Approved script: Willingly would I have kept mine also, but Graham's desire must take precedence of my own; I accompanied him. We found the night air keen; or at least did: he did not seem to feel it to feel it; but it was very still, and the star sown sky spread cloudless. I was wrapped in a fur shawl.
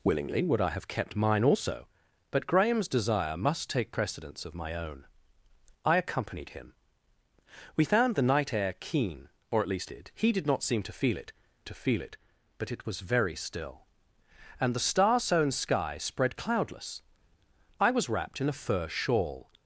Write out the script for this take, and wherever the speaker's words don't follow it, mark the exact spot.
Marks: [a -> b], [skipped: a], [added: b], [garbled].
Willingly would I have kept mine also, but Graham's desire must take precedence of my own; I accompanied him. We found the night air keen; or at least did: he did not seem to feel it to feel it; but it was very still, and the star sown sky spread cloudless. I was wrapped in a fur shawl.